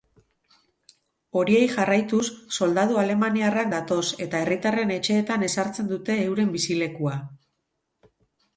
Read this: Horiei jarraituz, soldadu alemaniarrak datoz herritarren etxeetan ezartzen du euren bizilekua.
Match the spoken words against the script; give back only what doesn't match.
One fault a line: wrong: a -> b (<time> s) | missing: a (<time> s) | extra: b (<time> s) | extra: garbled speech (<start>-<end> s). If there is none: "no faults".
extra: eta (4.3 s)
wrong: du -> dute (5.9 s)